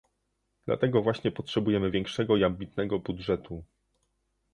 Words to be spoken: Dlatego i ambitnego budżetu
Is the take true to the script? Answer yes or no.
no